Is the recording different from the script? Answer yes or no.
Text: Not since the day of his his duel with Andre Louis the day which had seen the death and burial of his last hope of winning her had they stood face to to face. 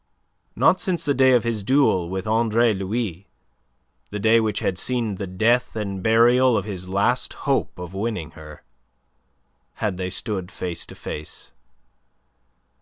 yes